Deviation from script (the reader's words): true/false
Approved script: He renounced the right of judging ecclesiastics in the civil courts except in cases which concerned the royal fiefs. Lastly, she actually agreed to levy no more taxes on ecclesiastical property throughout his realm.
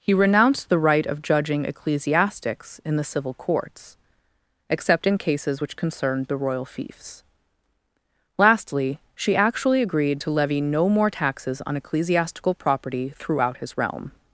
false